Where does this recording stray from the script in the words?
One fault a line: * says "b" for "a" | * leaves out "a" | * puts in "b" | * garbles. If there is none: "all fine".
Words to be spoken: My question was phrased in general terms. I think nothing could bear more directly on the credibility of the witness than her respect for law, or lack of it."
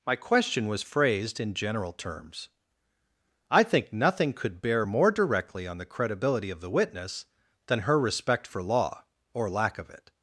all fine